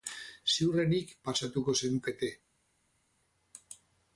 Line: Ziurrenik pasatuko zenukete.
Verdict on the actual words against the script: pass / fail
pass